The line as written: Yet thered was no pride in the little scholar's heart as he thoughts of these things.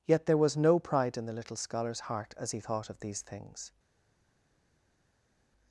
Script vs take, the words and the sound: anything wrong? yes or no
yes